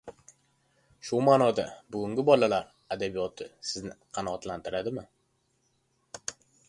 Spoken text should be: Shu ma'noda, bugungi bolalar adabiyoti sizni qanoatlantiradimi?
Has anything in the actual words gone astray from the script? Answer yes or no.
no